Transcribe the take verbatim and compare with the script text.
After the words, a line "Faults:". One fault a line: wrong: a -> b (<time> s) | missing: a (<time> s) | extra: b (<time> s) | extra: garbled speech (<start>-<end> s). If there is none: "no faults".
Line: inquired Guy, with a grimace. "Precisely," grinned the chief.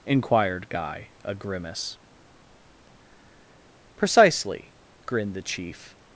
inquired Guy, a grimace. "Precisely," grinned the chief.
Faults:
missing: with (1.1 s)